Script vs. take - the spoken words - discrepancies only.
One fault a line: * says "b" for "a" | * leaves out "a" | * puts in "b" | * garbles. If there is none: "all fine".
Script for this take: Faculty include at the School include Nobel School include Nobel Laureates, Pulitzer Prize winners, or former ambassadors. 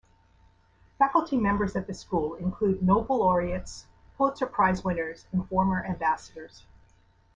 * says "members" for "include"
* leaves out "School include Nobel"
* says "and" for "or"